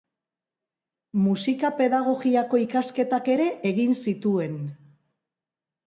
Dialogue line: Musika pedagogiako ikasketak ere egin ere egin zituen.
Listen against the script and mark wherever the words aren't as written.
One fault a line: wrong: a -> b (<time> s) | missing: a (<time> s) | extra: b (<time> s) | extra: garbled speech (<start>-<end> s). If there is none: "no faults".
missing: ere egin (4.0 s)